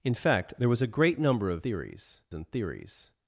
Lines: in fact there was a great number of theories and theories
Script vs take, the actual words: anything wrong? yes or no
no